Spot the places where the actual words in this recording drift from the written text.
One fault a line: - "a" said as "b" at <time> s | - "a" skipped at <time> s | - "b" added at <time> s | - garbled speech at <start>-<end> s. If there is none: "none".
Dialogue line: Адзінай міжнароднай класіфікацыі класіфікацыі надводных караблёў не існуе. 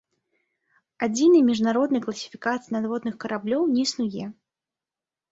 - "класіфікацыі" skipped at 2.7 s